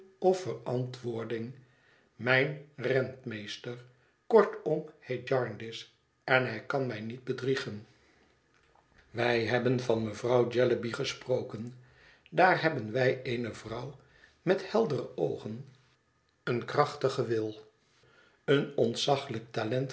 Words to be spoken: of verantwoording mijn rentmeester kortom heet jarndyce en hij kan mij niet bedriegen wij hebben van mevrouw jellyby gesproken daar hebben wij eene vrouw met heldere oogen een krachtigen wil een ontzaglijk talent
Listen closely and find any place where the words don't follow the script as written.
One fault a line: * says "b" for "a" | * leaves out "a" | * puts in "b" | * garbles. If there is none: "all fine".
all fine